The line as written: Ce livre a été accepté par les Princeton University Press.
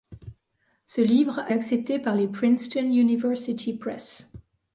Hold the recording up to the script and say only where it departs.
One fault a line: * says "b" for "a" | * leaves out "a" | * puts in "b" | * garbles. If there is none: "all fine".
* leaves out "été"